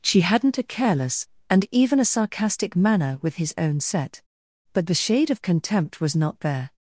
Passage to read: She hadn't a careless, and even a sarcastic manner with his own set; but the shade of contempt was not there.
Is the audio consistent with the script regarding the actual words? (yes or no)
yes